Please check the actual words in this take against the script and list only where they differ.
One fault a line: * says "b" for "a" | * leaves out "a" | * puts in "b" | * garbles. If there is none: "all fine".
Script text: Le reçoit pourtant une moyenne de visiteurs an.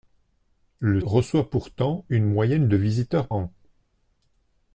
all fine